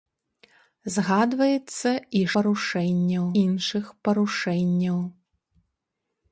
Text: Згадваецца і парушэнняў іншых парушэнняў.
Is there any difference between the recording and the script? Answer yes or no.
no